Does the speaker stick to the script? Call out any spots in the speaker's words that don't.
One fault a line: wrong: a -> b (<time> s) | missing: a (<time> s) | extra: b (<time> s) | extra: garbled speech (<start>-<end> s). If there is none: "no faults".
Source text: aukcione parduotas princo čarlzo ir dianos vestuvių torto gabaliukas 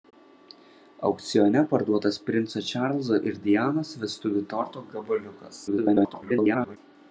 extra: garbled speech (5.7-6.8 s)